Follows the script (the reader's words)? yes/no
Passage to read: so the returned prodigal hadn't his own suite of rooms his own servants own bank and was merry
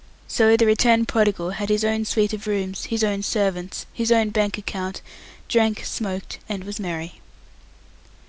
no